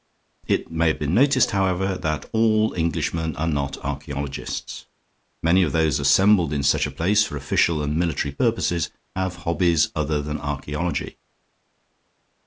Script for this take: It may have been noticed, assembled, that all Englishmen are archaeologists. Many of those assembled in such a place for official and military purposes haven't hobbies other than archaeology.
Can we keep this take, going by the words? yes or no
no